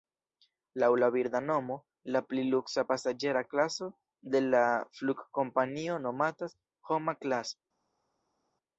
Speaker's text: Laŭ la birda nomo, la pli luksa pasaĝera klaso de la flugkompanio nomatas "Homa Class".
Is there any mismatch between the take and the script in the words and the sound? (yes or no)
no